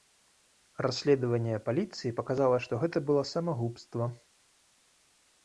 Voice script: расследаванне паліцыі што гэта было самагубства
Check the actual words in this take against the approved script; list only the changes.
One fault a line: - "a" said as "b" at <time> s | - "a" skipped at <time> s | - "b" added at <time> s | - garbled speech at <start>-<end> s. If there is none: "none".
- "паказала" added at 2.2 s